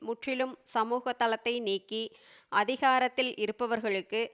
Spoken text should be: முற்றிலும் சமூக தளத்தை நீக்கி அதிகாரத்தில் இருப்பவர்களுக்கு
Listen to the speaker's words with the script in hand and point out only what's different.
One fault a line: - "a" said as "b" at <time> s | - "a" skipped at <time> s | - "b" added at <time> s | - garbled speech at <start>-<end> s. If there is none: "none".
none